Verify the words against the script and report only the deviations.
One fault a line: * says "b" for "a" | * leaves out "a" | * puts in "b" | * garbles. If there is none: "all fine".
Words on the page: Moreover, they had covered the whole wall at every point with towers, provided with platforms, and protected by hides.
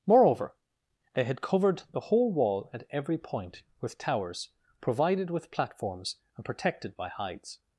all fine